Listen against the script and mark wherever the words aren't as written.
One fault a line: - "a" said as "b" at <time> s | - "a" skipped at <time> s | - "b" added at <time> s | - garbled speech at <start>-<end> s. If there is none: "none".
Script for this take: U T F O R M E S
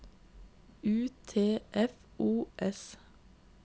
- "R M E" skipped at 2.5 s